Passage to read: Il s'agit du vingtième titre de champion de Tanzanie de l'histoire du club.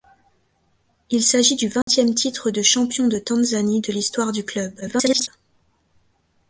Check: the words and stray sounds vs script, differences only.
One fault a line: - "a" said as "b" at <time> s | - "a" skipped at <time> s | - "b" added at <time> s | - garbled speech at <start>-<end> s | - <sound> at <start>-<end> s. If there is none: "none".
- dropout at 1.8-1.9 s
- garbled speech at 4.8-5.3 s